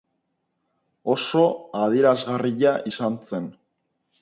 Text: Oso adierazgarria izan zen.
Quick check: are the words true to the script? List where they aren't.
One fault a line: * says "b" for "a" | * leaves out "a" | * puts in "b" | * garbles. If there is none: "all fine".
all fine